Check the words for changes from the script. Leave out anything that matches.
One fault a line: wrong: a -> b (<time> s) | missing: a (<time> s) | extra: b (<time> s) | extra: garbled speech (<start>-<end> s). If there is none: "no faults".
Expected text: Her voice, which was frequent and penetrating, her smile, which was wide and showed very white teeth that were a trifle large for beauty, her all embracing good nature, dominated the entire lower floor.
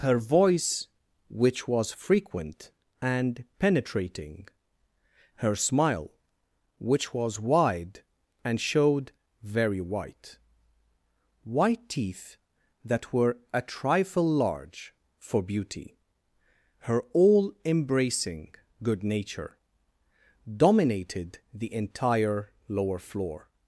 extra: white (11.4 s)